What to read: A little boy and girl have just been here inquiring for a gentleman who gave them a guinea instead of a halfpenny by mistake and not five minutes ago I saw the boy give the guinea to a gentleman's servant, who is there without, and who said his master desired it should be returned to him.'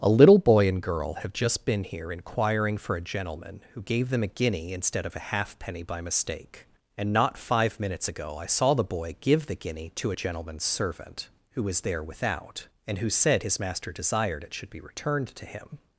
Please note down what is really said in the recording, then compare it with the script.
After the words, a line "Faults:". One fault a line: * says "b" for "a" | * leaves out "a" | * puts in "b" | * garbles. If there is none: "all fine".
A little boy and girl have just been here inquiring for a gentleman who gave them a guinea instead of a halfpenny by mistake and not five minutes ago I saw the boy give the guinea to a gentleman's servant, who was there without, and who said his master desired it should be returned to him.'
Faults:
* says "was" for "is"